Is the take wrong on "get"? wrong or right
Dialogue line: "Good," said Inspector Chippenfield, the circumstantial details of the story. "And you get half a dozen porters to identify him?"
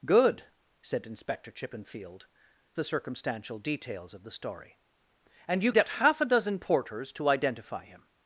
right